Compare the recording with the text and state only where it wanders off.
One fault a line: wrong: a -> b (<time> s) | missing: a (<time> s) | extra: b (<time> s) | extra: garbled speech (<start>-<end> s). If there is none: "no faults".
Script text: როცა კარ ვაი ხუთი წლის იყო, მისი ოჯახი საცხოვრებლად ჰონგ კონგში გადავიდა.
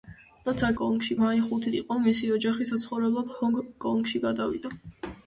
wrong: კარ -> კონგში (0.8 s)
missing: წლის (1.7 s)